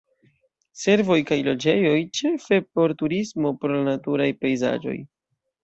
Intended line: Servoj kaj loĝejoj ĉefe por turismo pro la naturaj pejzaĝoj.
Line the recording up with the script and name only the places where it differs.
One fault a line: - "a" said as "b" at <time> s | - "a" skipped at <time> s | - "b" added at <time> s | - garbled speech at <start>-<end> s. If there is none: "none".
none